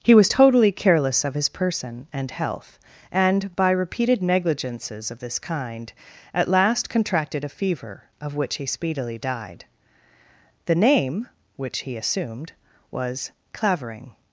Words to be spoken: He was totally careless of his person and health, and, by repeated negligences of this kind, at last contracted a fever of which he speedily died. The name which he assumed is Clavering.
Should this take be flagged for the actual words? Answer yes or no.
yes